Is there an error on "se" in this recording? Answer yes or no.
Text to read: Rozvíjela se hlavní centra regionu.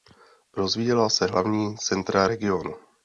no